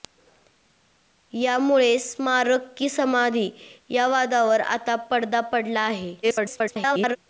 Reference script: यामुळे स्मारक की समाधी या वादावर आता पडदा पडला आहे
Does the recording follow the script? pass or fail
fail